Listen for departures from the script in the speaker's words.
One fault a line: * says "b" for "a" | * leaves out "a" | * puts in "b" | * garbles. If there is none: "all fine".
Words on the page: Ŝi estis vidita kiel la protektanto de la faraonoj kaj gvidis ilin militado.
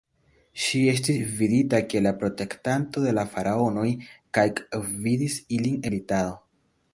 all fine